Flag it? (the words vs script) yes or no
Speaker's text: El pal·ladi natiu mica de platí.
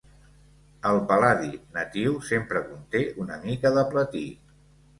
yes